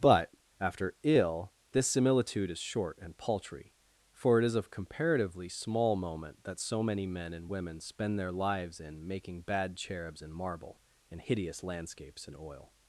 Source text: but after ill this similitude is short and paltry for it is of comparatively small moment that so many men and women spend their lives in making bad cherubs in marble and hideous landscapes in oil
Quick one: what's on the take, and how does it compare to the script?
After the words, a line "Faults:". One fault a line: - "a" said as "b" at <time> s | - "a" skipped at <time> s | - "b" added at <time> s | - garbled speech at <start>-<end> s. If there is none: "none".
but after ill this similitude is short and paltry for it is of comparatively small moment that so many men and women spend their lives in making bad cherubs in marble and hideous landscapes in oil
Faults:
none